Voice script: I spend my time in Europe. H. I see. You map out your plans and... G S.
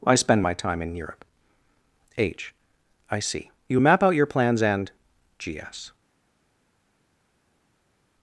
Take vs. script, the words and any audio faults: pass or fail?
pass